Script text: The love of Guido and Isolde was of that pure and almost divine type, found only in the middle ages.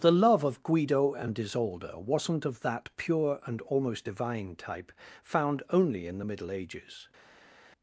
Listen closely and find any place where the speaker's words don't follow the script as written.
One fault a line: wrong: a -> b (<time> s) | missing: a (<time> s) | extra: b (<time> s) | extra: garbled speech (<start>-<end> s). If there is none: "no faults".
wrong: was -> wasn't (1.9 s)